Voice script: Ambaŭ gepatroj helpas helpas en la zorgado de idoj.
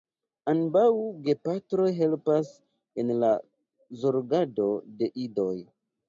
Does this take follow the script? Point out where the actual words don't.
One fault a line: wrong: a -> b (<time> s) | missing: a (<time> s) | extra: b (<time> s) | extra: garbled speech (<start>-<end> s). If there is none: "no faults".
missing: helpas (2.5 s)